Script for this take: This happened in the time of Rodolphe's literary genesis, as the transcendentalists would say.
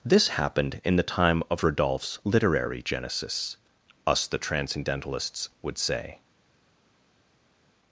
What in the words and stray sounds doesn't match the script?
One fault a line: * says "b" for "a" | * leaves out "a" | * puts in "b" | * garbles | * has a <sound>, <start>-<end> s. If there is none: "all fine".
* says "us" for "as"